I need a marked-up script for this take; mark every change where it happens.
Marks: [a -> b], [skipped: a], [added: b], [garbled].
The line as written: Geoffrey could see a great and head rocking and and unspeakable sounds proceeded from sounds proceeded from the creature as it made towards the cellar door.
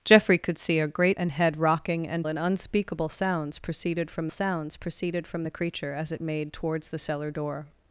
Geoffrey could see a great and head rocking and and unspeakable sounds proceeded from sounds proceeded from the creature as it made towards the cellar door.